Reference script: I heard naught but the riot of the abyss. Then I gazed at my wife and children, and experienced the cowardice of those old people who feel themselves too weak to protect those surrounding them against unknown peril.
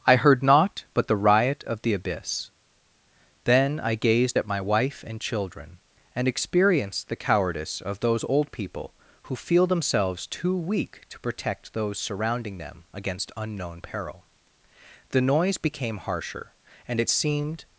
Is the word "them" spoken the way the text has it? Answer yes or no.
yes